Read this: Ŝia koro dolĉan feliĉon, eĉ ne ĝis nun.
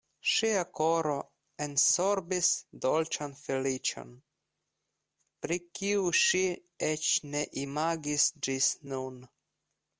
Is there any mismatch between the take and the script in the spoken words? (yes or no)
yes